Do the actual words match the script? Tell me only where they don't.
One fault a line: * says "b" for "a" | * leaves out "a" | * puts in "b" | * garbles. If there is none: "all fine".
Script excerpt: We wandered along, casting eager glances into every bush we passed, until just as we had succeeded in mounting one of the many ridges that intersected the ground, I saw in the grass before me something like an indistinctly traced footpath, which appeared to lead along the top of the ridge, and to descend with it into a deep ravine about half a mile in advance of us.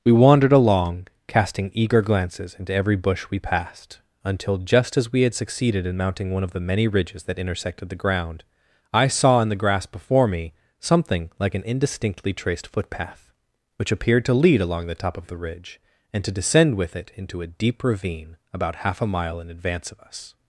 all fine